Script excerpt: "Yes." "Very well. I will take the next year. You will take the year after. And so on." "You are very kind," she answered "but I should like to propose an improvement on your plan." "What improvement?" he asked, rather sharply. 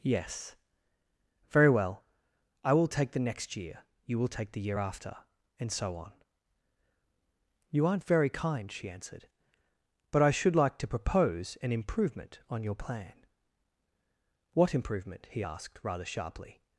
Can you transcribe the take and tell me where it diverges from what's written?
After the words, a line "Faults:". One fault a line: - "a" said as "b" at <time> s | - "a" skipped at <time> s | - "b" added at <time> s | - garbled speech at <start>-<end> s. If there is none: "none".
"Yes." "Very well. I will take the next year. You will take the year after. And so on." "You aren't very kind," she answered "but I should like to propose an improvement on your plan." "What improvement?" he asked, rather sharply.
Faults:
- "are" said as "aren't" at 7.9 s